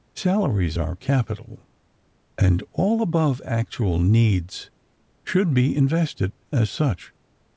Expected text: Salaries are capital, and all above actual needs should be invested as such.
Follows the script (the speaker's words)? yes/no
yes